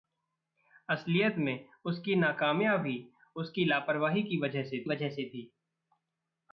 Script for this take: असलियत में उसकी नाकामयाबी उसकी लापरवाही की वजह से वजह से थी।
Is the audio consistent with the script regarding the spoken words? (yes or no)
yes